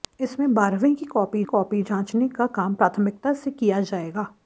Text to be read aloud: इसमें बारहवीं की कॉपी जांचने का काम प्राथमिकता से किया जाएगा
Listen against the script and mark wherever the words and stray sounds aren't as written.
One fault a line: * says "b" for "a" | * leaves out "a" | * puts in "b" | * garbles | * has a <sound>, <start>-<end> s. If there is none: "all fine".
* puts in "कॉपी"